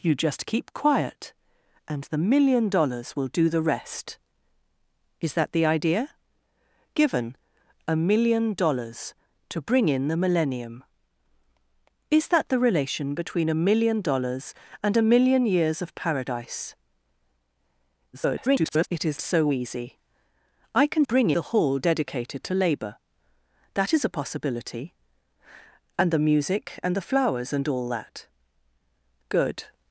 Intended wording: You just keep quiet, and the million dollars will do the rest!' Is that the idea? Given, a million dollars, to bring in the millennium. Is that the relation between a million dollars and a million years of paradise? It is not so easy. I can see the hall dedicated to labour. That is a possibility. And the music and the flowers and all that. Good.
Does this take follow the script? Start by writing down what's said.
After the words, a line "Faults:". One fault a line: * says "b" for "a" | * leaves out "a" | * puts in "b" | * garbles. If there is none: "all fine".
You just keep quiet, and the million dollars will do the rest!' Is that the idea? Given, a million dollars, to bring in the millennium. Is that the relation between a million dollars and a million years of paradise? [garbled] It is so easy. I can bring the hall dedicated to labour. That is a possibility. And the music and the flowers and all that. Good.
Faults:
* garbles
* leaves out "not"
* says "bring" for "see"